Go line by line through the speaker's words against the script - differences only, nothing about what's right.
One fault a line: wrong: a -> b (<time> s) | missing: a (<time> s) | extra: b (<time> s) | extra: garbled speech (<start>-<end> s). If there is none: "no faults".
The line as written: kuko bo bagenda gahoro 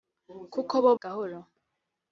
missing: bagenda (0.9 s)